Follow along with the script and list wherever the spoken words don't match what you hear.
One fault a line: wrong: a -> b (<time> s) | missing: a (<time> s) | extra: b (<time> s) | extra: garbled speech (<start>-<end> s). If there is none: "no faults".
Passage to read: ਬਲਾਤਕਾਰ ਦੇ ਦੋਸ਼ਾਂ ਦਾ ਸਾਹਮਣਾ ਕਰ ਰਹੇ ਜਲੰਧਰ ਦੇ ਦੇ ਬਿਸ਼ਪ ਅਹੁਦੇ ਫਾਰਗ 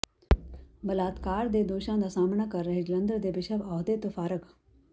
missing: ਦੇ (3.3 s)
extra: ਤੋਂ (4.0 s)